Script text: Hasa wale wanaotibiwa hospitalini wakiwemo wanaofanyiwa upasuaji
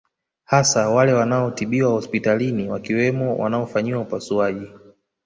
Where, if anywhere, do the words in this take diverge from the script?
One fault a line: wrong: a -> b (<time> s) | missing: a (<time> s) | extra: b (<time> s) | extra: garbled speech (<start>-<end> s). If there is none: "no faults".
no faults